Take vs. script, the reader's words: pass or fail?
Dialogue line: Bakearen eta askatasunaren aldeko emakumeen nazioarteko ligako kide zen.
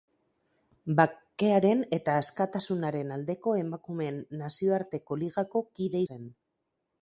pass